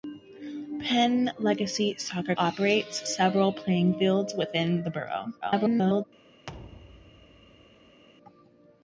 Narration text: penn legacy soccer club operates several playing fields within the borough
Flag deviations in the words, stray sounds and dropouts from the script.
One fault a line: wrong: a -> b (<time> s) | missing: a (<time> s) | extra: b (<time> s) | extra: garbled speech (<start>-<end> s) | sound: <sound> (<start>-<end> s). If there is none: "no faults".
missing: club (2.3 s)
extra: garbled speech (5.4-6.1 s)
sound: thud (6.5-8.0 s)